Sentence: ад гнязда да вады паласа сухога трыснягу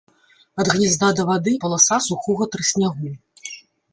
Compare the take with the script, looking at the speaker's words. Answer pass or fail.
pass